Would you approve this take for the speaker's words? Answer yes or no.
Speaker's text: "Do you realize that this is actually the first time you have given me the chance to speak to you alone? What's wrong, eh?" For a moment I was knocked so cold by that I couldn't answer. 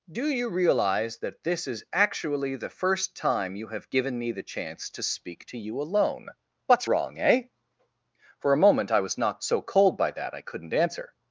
yes